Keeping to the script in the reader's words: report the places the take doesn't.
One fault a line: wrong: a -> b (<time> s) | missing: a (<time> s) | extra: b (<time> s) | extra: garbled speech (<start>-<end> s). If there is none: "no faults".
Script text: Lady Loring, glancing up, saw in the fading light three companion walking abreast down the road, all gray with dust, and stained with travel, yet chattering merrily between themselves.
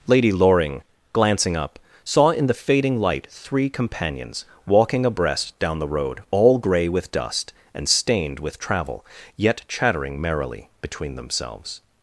wrong: companion -> companions (3.7 s)